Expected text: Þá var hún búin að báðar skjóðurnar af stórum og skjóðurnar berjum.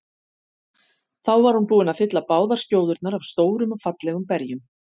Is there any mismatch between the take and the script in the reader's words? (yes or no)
yes